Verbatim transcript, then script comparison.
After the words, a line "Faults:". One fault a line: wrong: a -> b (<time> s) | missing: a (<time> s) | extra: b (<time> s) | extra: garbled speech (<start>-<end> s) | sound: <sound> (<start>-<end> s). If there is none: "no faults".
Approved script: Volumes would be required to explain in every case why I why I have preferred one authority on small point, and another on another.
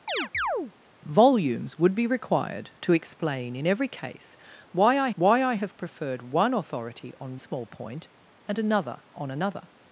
Volumes would be required to explain in every case why I why I have preferred one authority on small point, and another on another.
Faults:
sound: chirp (0.1-0.7 s)